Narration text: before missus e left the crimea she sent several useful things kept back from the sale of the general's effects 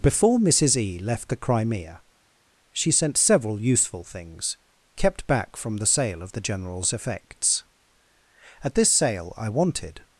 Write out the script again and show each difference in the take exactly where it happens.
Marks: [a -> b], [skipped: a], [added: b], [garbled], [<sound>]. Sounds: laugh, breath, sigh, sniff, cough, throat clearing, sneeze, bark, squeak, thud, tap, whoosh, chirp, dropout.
before missus e left the crimea she sent several useful things kept back from the sale of the general's effects [added: at this sale i wanted]